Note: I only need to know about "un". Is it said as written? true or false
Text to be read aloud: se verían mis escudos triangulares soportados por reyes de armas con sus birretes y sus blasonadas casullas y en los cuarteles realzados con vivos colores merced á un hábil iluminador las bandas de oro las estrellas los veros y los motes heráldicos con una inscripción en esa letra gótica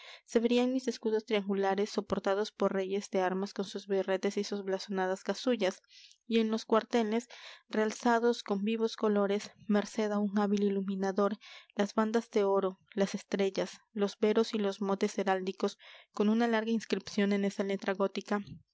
true